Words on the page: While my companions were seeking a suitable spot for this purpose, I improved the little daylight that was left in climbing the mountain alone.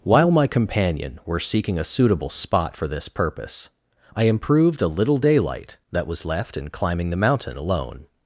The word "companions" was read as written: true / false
false